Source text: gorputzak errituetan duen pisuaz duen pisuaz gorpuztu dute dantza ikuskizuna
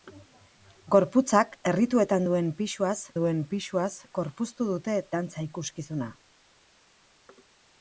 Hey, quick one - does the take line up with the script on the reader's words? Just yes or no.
yes